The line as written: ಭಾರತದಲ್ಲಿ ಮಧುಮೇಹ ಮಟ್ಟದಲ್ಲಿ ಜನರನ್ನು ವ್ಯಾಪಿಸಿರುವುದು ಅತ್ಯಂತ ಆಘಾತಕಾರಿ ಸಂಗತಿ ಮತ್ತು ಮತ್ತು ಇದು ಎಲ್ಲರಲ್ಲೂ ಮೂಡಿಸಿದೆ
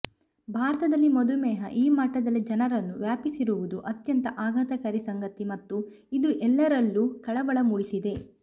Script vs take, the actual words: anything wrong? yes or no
yes